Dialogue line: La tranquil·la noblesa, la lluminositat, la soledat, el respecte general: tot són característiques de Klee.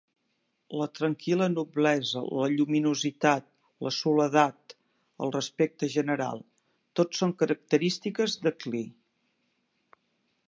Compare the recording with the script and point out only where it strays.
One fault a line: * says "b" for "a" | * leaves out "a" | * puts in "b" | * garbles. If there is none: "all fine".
all fine